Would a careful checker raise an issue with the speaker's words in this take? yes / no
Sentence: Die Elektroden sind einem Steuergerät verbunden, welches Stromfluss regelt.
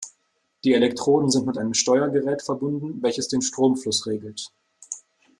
yes